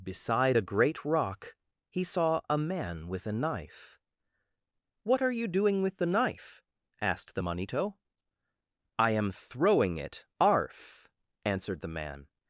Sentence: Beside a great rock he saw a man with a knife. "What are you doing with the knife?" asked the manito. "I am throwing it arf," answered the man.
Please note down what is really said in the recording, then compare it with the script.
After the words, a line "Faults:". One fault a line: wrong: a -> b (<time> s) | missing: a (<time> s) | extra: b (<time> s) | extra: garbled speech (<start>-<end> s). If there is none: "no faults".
Beside a great rock he saw a man with a knife. "What are you doing with the knife?" asked the manito. "I am throwing it arf," answered the man.
Faults:
no faults